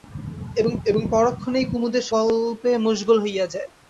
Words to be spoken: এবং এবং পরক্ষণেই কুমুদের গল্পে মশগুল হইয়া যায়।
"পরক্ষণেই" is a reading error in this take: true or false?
false